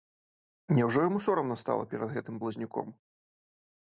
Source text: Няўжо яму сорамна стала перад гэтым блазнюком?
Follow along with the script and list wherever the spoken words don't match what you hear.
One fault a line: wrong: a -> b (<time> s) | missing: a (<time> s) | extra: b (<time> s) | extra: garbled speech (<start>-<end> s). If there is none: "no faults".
no faults